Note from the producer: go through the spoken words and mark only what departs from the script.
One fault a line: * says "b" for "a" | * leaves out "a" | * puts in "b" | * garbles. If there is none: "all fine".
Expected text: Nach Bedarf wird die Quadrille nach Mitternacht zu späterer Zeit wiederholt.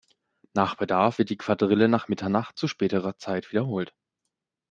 all fine